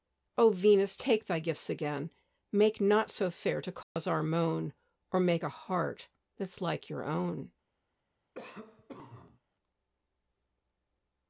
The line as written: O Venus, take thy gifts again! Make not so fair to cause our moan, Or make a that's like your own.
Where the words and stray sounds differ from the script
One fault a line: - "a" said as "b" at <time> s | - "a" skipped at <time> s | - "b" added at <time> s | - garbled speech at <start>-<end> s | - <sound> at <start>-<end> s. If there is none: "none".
- dropout at 3.8-4.0 s
- "heart" added at 5.5 s
- cough at 8.3-9.4 s